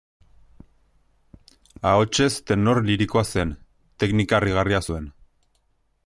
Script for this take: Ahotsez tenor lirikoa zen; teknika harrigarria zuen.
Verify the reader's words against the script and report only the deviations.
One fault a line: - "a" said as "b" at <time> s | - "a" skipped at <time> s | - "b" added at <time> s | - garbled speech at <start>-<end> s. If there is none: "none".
none